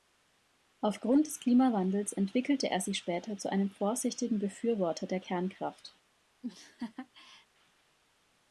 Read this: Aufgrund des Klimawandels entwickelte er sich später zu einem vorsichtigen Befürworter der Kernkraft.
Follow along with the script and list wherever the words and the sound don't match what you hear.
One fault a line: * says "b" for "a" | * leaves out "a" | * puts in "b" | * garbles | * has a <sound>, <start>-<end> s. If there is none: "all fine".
* has a laugh, 6.4-7.5 s